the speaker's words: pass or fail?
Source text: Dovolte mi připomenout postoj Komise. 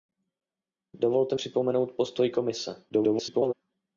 fail